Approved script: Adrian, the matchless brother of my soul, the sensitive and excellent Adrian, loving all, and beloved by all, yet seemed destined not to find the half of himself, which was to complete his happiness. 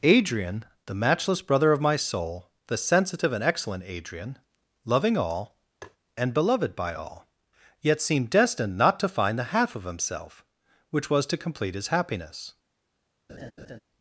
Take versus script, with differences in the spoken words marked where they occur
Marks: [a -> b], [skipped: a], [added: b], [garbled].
Adrian, the matchless brother of my soul, the sensitive and excellent Adrian, loving all, and beloved by all, yet seemed destined not to find the half of himself, which was to complete his happiness.